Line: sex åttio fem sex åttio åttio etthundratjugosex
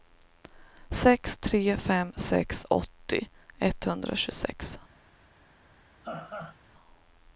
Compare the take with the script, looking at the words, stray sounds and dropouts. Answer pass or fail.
fail